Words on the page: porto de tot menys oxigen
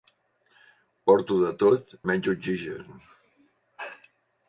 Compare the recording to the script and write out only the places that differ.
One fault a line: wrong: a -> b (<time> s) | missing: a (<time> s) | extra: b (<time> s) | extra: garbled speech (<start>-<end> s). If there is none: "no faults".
no faults